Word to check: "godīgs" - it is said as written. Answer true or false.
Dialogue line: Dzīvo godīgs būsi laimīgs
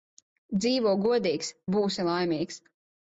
true